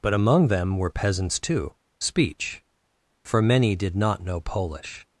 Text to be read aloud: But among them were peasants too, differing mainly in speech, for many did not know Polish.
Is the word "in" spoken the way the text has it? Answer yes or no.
no